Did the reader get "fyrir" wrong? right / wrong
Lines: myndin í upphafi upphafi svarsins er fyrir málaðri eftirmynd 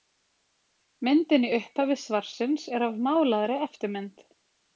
wrong